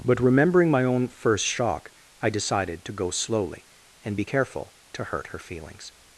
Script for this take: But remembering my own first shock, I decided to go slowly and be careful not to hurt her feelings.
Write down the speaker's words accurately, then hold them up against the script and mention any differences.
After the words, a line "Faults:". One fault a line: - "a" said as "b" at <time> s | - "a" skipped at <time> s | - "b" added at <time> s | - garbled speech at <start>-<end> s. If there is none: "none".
But remembering my own first shock, I decided to go slowly and be careful to hurt her feelings.
Faults:
- "not" skipped at 4.7 s